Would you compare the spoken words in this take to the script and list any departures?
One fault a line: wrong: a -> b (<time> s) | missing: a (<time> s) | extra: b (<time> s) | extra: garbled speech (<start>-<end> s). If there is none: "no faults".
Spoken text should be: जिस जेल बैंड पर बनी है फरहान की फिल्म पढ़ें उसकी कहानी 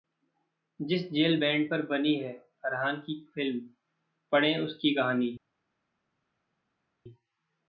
no faults